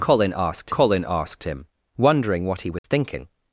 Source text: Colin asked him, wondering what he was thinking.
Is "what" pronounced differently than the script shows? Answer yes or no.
no